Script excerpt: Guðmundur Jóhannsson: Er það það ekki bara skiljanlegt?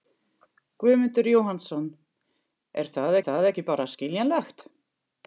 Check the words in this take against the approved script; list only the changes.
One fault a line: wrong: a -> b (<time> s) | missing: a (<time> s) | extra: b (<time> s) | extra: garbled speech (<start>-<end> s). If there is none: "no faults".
no faults